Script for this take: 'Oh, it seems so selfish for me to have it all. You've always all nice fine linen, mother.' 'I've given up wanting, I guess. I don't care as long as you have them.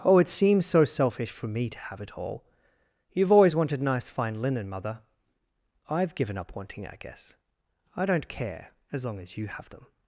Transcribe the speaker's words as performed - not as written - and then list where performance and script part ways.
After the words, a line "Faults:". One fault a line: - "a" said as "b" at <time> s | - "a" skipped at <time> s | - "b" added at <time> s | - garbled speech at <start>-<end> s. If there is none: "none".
'Oh, it seems so selfish for me to have it all. You've always wanted nice fine linen, mother.' 'I've given up wanting, I guess. I don't care as long as you have them.
Faults:
- "all" said as "wanted" at 3.5 s